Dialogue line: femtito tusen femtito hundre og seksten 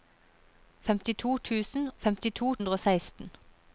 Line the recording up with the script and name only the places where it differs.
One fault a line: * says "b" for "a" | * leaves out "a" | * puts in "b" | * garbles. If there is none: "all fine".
all fine